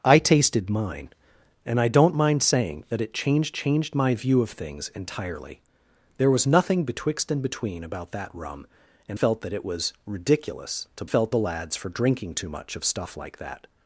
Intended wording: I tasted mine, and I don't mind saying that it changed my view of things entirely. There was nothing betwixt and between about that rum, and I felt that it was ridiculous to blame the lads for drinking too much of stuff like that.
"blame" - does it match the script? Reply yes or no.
no